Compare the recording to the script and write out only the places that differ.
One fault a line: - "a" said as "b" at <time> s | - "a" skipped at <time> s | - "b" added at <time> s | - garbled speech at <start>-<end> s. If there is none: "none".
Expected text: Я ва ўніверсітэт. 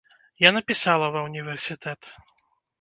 - "напісала" added at 0.6 s